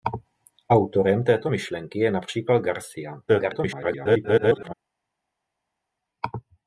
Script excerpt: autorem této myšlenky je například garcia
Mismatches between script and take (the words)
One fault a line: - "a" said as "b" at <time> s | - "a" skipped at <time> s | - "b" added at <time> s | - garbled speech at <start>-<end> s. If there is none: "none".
- garbled speech at 3.3-4.7 s